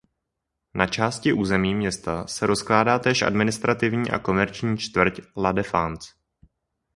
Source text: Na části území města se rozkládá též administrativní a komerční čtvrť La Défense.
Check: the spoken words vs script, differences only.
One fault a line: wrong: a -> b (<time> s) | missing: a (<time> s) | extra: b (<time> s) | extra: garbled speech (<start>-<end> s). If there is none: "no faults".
no faults